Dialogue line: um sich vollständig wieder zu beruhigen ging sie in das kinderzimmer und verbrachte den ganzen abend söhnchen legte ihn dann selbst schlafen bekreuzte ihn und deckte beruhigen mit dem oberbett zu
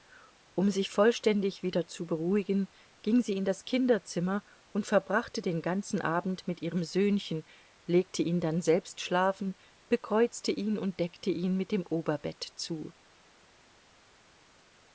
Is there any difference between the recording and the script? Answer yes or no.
yes